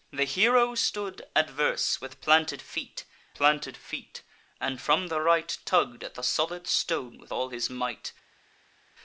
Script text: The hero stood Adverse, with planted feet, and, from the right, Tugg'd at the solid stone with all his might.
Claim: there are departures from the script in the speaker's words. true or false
true